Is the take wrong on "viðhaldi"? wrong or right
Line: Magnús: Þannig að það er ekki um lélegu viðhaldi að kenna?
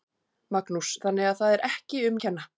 wrong